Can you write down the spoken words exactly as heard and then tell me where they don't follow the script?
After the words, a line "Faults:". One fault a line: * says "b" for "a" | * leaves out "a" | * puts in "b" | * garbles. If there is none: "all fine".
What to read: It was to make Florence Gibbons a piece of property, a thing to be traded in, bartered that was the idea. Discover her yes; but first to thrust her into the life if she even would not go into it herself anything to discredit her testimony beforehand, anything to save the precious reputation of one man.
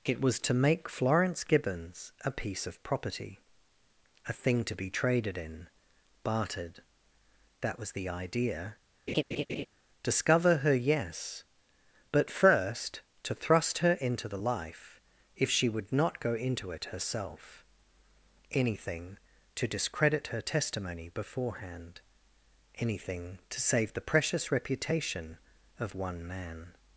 It was to make Florence Gibbons a piece of property, a thing to be traded in, bartered that was the idea. Discover her yes; but first to thrust her into the life if she would not go into it herself anything to discredit her testimony beforehand, anything to save the precious reputation of one man.
Faults:
* leaves out "even"